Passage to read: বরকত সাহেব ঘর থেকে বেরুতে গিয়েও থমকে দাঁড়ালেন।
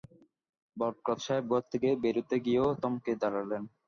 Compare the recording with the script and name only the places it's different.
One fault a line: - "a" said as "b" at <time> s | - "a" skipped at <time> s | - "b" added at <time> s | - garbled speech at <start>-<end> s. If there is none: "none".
none